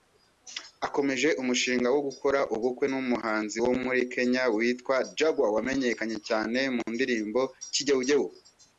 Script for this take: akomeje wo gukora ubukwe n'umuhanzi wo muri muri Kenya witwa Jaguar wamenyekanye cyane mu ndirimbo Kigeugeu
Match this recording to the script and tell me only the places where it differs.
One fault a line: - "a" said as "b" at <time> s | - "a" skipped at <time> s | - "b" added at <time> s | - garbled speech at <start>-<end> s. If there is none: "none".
- "umushinga" added at 1.4 s
- "muri" skipped at 4.0 s